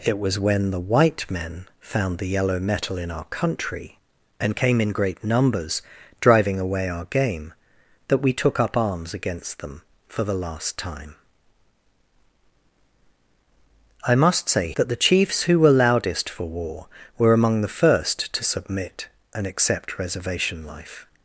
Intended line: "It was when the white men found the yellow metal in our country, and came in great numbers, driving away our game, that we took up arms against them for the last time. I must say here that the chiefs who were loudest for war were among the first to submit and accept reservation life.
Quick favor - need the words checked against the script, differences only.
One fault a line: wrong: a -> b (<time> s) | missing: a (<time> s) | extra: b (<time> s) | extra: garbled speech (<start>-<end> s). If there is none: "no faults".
missing: here (14.7 s)